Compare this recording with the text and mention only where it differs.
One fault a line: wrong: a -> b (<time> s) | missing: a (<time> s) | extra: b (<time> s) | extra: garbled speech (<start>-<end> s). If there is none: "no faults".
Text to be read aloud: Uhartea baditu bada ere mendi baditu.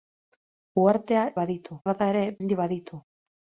no faults